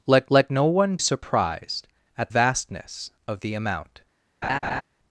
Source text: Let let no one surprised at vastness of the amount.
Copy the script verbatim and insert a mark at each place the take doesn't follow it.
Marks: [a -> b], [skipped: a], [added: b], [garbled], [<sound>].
Let let no one surprised at vastness of the amount. [laugh]